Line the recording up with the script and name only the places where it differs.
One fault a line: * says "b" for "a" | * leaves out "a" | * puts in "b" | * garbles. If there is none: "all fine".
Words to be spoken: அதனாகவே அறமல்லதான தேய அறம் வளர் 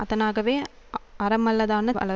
* leaves out "தேய அறம்"